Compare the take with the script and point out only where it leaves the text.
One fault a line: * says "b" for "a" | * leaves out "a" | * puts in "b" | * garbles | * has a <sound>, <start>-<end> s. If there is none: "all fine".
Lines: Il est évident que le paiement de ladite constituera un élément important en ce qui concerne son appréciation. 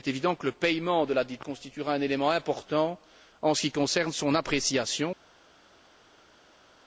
all fine